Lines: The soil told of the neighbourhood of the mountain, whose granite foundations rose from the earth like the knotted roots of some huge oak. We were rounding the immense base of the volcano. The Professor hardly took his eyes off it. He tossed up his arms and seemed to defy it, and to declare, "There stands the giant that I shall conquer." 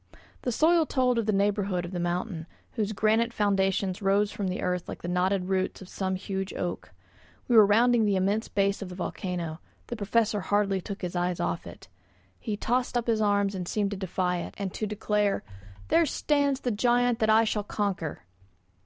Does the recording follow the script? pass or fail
pass